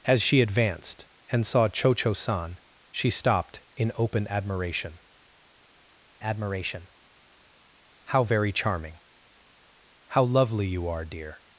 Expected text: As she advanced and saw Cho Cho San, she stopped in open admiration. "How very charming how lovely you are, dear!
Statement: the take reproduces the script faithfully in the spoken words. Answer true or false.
false